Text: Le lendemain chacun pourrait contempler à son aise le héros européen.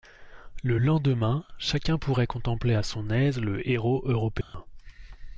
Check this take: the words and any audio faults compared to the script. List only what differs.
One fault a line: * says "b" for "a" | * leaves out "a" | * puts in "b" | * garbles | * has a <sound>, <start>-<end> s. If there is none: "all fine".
* has a dropout, 4.4-4.5 s